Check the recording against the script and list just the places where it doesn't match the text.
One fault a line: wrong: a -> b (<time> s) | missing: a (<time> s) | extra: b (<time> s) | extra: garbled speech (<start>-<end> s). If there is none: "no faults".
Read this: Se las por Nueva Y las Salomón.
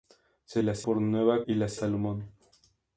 no faults